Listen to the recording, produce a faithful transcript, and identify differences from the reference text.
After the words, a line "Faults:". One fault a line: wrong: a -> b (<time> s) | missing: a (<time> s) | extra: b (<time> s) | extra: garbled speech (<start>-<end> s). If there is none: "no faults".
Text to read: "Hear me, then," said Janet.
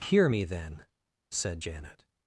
"Hear me, then," said Janet.
Faults:
no faults